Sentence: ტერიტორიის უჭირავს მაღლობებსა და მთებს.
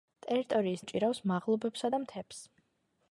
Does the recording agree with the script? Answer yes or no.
yes